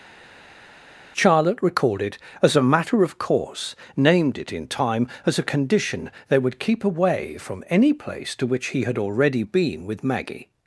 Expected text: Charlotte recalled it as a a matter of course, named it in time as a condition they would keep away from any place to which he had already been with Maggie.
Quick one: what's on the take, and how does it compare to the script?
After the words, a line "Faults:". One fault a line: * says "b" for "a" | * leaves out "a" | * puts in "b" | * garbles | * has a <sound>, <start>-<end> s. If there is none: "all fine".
Charlotte recalled it as a matter of course, named it in time as a condition they would keep away from any place to which he had already been with Maggie.
Faults:
* leaves out "a"